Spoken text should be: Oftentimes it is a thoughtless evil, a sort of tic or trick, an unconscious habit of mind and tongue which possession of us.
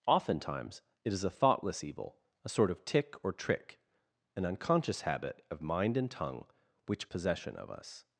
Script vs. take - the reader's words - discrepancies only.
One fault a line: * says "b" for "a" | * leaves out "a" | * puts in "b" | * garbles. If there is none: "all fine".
all fine